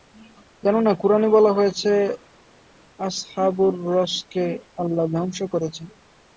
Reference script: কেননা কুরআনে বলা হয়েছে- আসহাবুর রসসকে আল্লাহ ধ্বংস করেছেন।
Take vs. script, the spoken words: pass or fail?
pass